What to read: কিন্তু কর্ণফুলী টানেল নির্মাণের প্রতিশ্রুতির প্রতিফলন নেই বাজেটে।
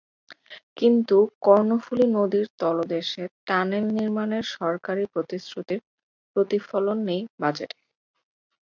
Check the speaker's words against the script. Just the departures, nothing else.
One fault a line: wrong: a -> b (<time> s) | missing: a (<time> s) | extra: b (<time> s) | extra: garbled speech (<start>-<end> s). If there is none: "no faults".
extra: নদীর তলদেশে (2.1 s)
extra: সরকারি (4.5 s)